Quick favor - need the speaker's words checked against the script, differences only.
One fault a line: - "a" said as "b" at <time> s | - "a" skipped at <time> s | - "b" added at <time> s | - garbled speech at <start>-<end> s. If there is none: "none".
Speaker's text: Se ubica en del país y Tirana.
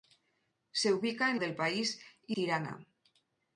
none